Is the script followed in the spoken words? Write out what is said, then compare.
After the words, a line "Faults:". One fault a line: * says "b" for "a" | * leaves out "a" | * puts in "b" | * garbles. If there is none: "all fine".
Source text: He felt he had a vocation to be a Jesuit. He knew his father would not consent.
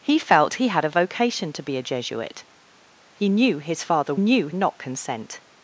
He felt he had a vocation to be a Jesuit. He knew his father knew not consent.
Faults:
* says "knew" for "would"